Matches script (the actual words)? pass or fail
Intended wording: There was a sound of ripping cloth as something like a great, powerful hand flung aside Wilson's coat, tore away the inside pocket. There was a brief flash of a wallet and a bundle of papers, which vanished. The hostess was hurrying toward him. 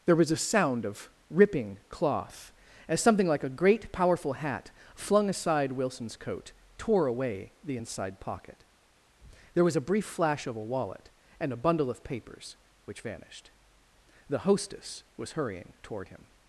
fail